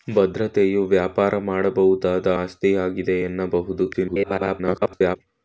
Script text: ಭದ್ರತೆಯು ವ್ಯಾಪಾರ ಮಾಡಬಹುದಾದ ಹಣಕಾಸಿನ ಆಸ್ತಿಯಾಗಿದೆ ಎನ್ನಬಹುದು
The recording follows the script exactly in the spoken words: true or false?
false